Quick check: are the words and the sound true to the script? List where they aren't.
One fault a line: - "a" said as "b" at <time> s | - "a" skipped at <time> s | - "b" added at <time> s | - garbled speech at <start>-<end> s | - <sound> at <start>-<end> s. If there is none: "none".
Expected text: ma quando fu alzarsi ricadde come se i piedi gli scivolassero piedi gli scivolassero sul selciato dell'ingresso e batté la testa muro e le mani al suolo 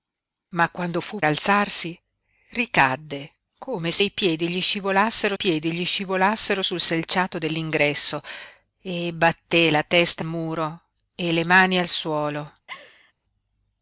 - laugh at 12.7-13.1 s